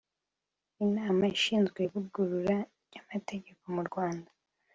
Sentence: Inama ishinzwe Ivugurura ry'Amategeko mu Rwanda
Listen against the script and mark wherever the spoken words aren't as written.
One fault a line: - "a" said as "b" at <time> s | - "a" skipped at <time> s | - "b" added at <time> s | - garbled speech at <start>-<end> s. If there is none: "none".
none